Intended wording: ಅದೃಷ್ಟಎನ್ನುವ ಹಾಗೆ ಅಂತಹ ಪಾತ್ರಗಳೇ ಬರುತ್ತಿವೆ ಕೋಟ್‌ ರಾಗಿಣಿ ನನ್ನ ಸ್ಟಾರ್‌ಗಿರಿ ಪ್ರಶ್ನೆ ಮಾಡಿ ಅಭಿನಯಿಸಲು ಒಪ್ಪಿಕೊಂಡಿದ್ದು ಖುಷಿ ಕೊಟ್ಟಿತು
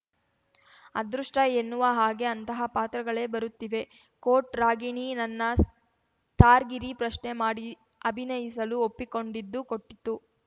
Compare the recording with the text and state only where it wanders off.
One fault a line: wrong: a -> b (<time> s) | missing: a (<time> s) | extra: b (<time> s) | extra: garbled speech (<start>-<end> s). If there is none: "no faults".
missing: ಖುಷಿ (9.6 s)